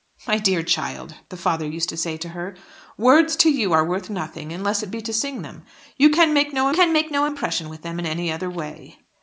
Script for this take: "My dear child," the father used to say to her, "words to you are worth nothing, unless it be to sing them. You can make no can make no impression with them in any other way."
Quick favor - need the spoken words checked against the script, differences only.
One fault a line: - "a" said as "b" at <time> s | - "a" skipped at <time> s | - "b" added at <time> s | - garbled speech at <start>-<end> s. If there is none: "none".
none